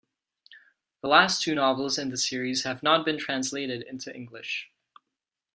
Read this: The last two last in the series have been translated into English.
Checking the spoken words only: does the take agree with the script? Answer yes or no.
no